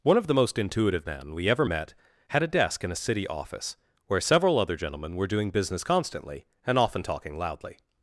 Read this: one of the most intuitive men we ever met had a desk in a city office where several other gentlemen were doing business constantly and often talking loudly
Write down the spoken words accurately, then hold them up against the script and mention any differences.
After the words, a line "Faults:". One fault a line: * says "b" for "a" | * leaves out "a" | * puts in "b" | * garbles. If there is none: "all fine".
one of the most intuitive men we ever met had a desk in a city office where several other gentlemen were doing business constantly and often talking loudly
Faults:
all fine